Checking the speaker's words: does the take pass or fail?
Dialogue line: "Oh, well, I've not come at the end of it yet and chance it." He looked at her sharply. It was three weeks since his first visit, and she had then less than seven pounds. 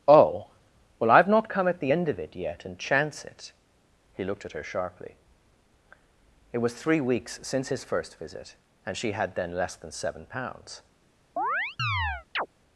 pass